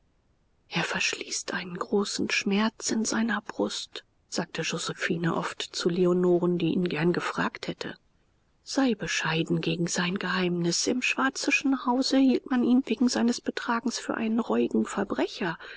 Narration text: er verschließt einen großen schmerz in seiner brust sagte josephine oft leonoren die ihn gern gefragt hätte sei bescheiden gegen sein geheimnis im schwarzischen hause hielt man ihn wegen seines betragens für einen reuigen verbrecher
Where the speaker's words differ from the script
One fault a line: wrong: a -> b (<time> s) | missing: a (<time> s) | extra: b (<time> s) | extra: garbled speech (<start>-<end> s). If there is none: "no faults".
extra: zu (5.6 s)